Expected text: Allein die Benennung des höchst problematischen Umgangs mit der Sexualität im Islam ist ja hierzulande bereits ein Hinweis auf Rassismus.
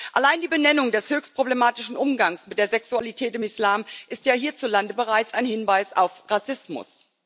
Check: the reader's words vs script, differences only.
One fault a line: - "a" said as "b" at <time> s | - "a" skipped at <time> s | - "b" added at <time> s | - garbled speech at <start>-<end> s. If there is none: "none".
none